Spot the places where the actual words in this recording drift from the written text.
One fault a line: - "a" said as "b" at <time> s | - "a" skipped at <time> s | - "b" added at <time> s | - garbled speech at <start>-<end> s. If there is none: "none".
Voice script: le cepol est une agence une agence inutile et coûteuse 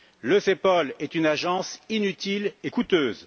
- "une agence" skipped at 1.8 s